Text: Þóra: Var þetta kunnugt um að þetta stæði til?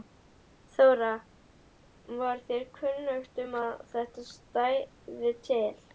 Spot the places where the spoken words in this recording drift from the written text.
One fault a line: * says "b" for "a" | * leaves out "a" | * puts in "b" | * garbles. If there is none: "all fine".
* says "þér" for "þetta"